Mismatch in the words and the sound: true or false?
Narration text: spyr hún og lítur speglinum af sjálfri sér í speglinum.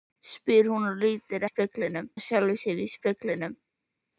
false